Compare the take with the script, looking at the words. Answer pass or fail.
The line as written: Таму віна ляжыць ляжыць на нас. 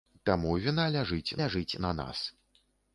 pass